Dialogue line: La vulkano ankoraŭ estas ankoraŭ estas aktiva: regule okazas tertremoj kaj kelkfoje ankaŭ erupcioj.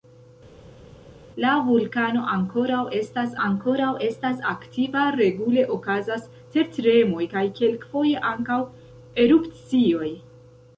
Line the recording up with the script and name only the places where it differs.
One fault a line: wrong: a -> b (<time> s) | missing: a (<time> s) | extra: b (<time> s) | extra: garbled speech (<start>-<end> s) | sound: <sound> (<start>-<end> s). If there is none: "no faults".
no faults